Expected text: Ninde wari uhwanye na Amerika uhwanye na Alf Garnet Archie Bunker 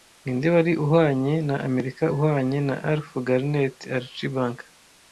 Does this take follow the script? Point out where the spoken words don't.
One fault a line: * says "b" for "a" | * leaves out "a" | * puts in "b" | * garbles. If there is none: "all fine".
all fine